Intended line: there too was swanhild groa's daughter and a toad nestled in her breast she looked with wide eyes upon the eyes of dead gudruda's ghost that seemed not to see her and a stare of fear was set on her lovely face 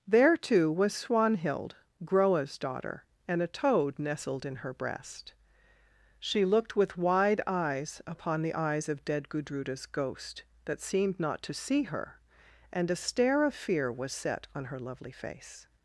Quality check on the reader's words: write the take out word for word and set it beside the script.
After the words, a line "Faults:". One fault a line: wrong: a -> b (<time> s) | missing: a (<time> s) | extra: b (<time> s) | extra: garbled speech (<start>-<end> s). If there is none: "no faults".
there too was swanhild groa's daughter and a toad nestled in her breast she looked with wide eyes upon the eyes of dead gudruda's ghost that seemed not to see her and a stare of fear was set on her lovely face
Faults:
no faults